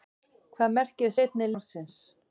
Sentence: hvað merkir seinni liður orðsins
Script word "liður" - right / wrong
wrong